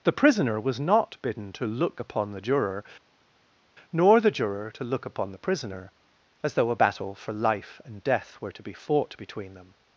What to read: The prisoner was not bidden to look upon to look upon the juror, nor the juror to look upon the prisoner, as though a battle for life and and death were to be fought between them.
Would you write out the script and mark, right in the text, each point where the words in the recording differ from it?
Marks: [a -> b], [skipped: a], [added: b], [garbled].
The prisoner was not bidden to look upon [skipped: to look upon] the juror, nor the juror to look upon the prisoner, as though a battle for life and [skipped: and] death were to be fought between them.